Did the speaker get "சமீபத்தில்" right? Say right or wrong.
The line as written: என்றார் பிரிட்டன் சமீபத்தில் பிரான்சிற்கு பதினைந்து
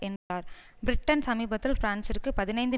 right